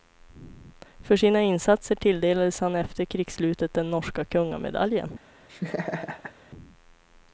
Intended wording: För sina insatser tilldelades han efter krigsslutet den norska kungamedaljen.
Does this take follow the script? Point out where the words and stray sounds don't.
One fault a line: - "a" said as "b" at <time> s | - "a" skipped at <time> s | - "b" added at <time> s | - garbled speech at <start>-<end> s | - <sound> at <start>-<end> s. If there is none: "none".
- laugh at 5.5-6.3 s